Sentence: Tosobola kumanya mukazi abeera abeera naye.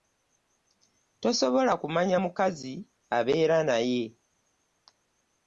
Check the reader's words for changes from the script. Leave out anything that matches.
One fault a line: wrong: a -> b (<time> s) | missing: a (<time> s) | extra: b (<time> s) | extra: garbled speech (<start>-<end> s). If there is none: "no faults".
missing: abeera (3.6 s)